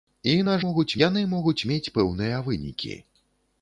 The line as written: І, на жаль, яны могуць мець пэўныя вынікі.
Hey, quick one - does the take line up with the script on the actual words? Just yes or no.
no